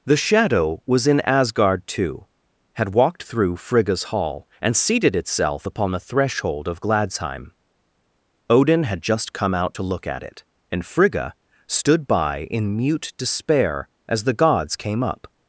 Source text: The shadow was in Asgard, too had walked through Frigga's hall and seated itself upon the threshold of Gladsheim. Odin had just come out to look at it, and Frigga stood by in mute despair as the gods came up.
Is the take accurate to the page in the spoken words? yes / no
yes